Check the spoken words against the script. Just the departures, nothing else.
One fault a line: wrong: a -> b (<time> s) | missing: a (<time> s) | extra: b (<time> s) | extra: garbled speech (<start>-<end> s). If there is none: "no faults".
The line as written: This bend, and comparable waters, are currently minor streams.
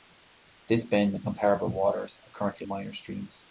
no faults